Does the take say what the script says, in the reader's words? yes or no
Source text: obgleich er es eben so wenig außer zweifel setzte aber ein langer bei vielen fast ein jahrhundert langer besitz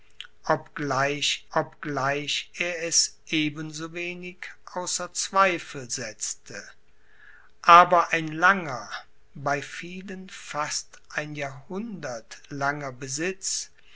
no